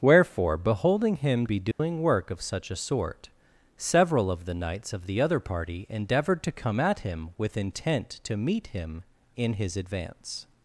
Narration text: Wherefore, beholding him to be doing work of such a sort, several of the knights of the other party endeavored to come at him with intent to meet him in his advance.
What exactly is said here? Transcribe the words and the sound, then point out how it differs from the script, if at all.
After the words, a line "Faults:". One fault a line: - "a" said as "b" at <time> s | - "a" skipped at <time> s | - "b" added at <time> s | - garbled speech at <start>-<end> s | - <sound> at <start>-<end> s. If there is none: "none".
Wherefore, beholding him be doing work of such a sort, several of the knights of the other party endeavored to come at him with intent to meet him in his advance.
Faults:
- "to" skipped at 1.4 s
- dropout at 1.7-1.8 s